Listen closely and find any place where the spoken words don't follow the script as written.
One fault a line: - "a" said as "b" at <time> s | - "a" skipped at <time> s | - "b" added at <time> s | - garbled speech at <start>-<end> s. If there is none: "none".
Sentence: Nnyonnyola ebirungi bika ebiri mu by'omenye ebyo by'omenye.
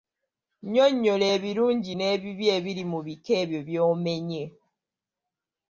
- "bika" said as "n'ebibi" at 1.9 s
- "by'omenye" said as "bika" at 3.1 s